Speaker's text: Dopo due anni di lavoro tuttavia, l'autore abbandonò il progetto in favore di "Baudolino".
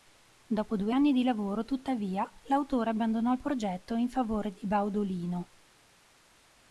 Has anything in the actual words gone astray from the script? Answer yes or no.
no